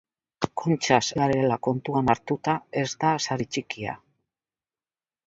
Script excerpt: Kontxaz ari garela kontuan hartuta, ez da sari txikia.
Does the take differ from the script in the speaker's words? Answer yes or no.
yes